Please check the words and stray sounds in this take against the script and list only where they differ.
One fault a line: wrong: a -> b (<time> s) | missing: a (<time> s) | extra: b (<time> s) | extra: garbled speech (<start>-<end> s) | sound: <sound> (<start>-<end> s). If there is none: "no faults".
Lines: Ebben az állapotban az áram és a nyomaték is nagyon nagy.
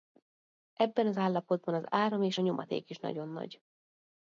no faults